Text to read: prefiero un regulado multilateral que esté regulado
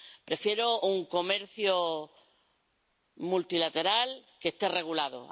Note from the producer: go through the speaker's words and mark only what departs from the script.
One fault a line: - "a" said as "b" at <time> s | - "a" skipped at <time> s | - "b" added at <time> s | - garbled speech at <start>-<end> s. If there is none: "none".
- "regulado" said as "comercio" at 1.0 s